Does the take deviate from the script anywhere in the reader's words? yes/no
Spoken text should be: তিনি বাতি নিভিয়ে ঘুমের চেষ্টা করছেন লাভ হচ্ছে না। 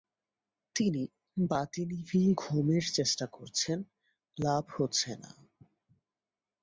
no